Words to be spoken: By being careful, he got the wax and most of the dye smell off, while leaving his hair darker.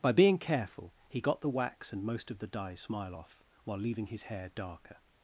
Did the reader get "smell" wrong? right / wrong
wrong